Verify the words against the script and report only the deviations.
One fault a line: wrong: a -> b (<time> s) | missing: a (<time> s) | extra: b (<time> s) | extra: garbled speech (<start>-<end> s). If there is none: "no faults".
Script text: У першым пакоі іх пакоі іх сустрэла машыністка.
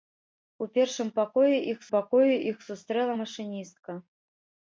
no faults